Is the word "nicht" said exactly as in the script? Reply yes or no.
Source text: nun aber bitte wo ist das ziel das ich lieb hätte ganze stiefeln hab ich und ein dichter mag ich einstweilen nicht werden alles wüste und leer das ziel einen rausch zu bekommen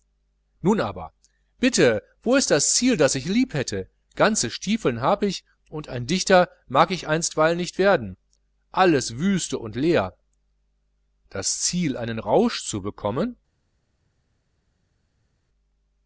yes